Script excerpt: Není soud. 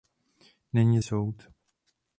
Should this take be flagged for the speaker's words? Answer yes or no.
no